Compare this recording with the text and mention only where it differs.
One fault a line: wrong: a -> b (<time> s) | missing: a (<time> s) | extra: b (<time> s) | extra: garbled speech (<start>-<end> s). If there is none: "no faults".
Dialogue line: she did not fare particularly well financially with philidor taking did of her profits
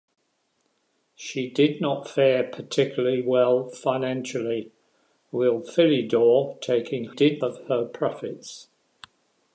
no faults